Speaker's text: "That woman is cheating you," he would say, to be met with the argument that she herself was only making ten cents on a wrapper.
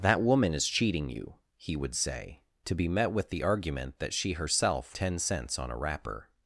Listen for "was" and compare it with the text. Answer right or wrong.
wrong